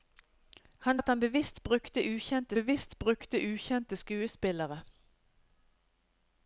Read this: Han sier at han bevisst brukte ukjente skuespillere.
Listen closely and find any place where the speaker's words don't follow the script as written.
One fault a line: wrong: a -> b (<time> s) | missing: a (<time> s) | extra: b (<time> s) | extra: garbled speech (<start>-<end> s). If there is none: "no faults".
missing: sier (1.0 s)
extra: bevisst brukte ukjente (2.5 s)